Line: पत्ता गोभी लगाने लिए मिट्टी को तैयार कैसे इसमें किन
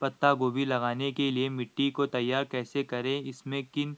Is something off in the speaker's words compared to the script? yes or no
yes